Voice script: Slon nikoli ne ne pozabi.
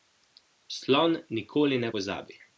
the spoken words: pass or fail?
fail